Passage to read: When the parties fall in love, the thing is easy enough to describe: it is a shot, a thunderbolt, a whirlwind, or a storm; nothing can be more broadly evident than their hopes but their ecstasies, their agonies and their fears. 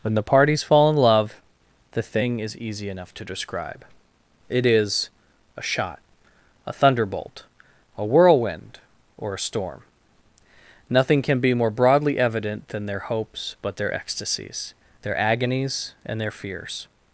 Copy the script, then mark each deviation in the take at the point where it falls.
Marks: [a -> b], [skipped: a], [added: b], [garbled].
When the parties fall in love, the thing is easy enough to describe: it is a shot, a thunderbolt, a whirlwind, or a storm; nothing can be more broadly evident than their hopes but their ecstasies, their agonies and their fears.